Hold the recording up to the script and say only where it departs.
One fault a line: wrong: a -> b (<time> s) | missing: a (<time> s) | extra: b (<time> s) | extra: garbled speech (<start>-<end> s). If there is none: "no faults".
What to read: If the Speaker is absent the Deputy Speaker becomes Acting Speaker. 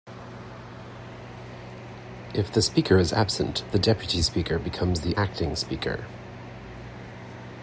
extra: the (5.0 s)